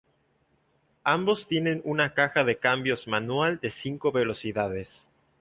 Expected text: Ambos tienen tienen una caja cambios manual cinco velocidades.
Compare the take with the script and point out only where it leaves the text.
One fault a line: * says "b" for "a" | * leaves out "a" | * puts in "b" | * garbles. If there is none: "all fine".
* leaves out "tienen"
* puts in "de"
* puts in "de"